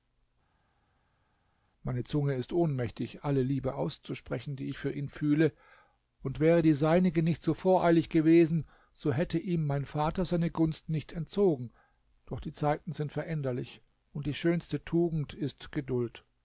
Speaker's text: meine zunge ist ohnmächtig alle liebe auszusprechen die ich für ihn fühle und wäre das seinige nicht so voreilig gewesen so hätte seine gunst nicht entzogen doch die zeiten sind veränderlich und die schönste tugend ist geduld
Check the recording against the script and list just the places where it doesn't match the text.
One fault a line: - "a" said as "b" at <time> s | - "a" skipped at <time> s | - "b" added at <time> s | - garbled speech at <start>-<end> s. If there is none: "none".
- "das" said as "die" at 6.6 s
- "ihm mein vater" added at 9.4 s